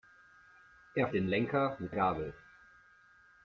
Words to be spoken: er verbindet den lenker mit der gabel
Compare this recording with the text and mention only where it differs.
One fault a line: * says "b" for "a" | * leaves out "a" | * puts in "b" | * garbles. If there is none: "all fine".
* leaves out "verbindet"
* leaves out "der"